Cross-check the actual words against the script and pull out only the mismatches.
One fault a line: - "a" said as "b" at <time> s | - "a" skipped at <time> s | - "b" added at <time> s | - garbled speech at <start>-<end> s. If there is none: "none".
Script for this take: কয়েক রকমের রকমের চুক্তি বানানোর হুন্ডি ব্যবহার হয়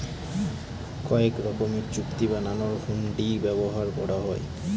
- "রকমের" skipped at 1.9 s
- "করা" added at 4.0 s